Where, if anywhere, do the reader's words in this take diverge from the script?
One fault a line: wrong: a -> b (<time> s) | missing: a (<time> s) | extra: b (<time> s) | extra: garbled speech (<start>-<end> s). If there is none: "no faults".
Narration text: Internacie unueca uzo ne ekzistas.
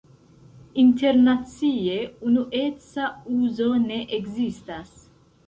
no faults